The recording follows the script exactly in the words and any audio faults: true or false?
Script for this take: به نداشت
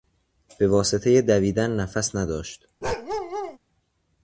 false